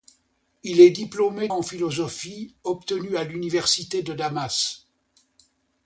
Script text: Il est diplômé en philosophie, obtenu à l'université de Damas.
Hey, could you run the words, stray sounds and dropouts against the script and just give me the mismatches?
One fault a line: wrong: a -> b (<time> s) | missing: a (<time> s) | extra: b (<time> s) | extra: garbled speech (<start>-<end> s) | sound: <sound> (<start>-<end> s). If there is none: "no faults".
no faults